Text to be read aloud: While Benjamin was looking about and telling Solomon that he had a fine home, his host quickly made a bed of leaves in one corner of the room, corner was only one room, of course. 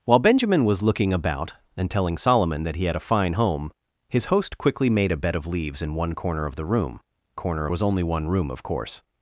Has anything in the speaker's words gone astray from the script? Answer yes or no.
no